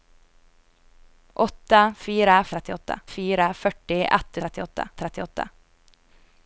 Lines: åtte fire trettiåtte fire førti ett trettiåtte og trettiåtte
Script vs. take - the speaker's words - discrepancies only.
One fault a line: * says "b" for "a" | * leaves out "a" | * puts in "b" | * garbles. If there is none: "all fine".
all fine